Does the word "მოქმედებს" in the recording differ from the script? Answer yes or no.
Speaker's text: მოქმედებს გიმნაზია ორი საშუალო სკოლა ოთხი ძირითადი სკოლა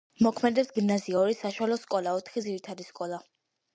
no